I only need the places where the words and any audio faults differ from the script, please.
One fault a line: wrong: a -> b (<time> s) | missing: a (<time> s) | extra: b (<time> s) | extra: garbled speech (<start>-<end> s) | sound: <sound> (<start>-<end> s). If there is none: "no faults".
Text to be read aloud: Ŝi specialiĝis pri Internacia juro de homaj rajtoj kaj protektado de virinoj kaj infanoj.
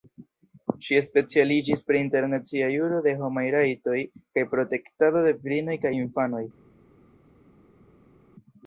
no faults